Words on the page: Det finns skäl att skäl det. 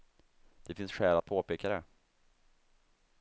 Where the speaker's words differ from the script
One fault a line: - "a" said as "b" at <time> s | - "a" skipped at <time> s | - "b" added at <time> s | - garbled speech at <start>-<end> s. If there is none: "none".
- "skäl" said as "påpeka" at 1.2 s